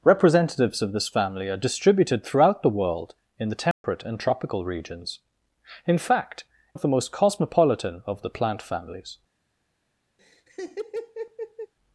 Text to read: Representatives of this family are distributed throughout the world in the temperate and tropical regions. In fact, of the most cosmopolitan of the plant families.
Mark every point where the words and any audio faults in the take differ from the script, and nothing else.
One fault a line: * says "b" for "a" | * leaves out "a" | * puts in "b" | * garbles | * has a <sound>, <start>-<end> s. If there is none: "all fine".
* has a dropout, 3.7-3.8 s
* has a laugh, 10.2-11.7 s